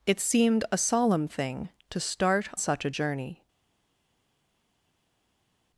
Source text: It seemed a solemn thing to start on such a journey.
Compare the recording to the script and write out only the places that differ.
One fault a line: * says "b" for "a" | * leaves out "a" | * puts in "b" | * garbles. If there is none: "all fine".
* leaves out "on"